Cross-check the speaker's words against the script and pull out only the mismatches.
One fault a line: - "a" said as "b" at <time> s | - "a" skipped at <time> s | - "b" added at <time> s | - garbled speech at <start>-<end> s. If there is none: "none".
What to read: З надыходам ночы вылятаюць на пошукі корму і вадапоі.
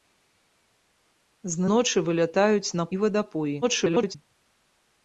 - "надыходам" skipped at 1.6 s
- "пошукі корму" skipped at 2.8 s
- garbled speech at 3.6-4.2 s